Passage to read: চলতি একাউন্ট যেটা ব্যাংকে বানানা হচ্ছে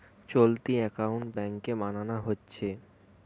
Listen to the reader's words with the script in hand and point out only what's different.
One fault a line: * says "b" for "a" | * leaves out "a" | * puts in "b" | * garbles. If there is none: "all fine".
* leaves out "যেটা"